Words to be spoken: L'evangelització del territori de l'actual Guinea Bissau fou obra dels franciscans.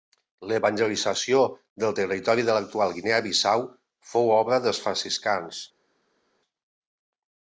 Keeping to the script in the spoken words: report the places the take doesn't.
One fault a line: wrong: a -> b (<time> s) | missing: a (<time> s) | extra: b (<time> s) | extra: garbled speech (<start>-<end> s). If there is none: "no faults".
no faults